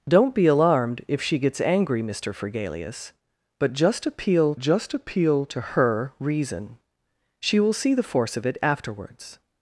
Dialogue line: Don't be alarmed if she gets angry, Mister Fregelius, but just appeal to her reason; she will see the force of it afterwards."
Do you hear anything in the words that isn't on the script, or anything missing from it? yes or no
yes